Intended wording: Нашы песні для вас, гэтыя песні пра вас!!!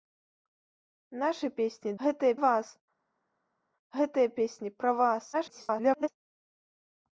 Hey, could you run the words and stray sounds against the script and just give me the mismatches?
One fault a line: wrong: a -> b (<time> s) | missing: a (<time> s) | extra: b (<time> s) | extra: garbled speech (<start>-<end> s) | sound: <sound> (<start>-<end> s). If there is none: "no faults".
wrong: для -> гэтыя (2.1 s)
extra: garbled speech (5.3-6.1 s)